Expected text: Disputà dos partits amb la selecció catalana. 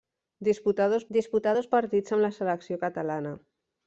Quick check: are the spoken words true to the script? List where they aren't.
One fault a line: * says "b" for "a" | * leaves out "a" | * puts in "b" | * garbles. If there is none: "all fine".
* puts in "disputà dos"